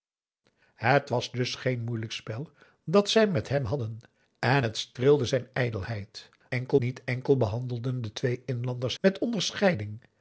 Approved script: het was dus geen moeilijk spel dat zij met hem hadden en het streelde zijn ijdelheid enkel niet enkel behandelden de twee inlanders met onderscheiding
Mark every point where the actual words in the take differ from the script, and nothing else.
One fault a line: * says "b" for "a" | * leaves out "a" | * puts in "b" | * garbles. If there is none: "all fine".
all fine